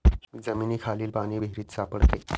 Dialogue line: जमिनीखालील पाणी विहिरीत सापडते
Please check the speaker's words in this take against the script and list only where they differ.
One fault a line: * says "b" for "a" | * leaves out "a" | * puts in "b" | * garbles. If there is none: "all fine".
all fine